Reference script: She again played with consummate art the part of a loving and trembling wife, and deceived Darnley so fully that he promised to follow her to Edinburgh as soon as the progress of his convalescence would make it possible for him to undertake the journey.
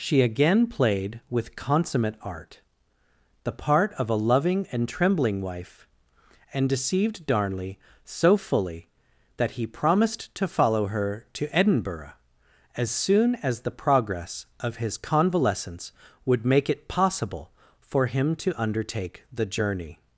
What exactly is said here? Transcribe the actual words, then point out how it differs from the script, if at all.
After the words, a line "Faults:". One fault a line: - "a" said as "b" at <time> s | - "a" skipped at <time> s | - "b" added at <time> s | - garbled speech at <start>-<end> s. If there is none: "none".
She again played with consummate art the part of a loving and trembling wife, and deceived Darnley so fully that he promised to follow her to Edinburgh as soon as the progress of his convalescence would make it possible for him to undertake the journey.
Faults:
none